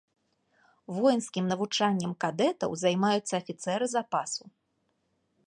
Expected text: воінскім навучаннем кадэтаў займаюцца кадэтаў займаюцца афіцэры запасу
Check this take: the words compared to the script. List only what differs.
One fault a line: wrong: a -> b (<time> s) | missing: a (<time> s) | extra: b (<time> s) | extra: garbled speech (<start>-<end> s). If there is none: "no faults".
missing: кадэтаў займаюцца (3.3 s)